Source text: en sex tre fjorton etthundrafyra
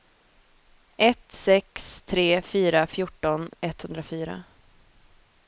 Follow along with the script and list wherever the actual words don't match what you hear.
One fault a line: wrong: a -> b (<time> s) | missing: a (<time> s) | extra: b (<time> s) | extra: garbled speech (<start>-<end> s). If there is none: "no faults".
wrong: en -> ett (1.0 s)
extra: fyra (2.4 s)